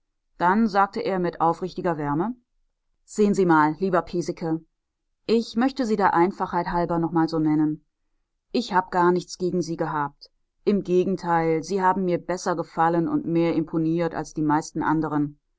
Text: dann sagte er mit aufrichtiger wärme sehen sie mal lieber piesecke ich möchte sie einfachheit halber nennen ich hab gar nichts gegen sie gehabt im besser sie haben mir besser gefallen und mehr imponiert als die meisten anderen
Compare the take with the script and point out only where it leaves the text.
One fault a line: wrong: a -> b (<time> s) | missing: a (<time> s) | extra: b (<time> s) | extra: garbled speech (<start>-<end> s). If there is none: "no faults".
extra: der (6.0 s)
extra: noch mal so (7.0 s)
wrong: besser -> gegenteil (10.8 s)